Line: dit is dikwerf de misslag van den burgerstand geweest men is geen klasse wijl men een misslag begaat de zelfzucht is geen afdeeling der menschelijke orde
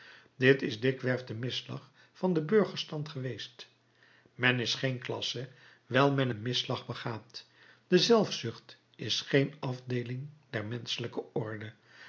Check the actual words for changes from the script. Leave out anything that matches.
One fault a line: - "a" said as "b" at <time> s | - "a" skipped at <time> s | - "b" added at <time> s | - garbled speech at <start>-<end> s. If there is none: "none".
none